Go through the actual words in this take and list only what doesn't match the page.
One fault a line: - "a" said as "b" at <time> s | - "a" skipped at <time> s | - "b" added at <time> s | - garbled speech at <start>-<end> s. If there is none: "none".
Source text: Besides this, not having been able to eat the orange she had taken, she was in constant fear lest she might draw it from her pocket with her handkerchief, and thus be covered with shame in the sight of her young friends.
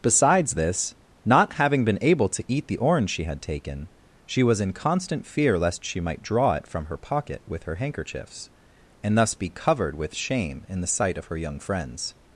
- "handkerchief" said as "handkerchiefs" at 7.8 s